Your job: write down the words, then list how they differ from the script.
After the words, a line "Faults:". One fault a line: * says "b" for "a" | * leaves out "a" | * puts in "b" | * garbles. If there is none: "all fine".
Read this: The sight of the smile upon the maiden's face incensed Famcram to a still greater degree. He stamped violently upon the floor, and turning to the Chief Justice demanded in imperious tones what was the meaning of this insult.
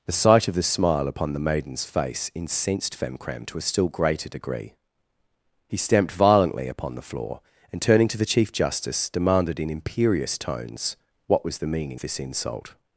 The sight of the smile upon the maiden's face incensed Famcram to a still greater degree. He stamped violently upon the floor, and turning to the Chief Justice demanded in imperious tones what was the meaning this insult.
Faults:
* leaves out "of"